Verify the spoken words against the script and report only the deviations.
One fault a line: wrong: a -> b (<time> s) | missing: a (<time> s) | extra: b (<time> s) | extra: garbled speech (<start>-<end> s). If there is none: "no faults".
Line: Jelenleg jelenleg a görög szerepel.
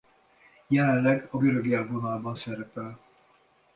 missing: jelenleg (1.3 s)
extra: élvonalban (1.7 s)